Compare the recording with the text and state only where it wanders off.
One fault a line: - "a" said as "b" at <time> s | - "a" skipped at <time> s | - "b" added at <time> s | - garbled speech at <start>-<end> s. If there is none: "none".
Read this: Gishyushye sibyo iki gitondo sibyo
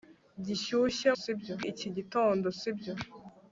none